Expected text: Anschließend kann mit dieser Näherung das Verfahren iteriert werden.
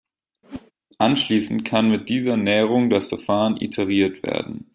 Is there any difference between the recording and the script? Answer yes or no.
no